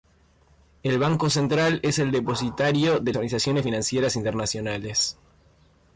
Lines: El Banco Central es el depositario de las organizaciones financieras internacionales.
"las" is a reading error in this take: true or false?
true